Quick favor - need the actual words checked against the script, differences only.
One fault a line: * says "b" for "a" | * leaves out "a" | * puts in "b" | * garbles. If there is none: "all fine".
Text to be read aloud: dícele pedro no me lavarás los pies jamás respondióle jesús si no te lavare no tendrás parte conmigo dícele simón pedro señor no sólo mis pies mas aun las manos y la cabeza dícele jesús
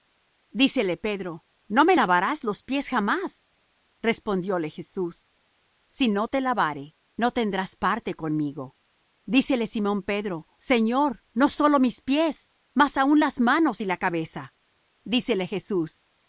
all fine